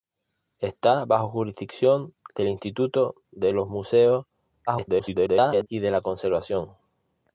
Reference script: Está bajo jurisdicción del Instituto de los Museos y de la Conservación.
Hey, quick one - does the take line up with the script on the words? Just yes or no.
no